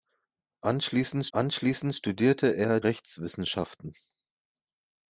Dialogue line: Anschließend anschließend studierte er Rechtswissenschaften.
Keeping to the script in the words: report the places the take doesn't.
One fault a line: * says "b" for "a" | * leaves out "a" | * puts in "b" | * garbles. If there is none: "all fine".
all fine